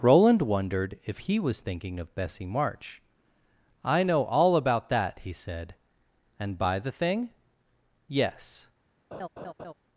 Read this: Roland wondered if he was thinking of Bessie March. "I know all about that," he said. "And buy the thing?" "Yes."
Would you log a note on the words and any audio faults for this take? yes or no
yes